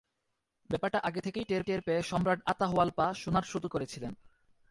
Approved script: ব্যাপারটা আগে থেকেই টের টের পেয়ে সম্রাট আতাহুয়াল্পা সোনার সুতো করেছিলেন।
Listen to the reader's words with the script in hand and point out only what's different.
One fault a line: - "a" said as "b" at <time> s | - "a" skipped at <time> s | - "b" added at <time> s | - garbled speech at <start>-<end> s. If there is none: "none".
none